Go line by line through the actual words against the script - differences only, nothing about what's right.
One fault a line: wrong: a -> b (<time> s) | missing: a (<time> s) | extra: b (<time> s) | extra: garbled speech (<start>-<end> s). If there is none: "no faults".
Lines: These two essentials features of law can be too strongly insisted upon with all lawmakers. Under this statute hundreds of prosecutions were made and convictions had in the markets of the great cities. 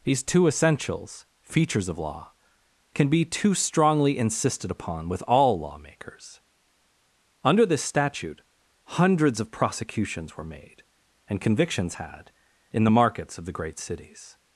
no faults